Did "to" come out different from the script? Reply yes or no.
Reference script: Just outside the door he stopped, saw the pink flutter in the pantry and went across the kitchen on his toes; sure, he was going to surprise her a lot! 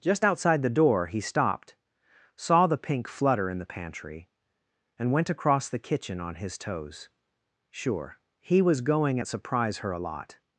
yes